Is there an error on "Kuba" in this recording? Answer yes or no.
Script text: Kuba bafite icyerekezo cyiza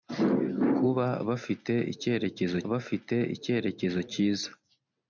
no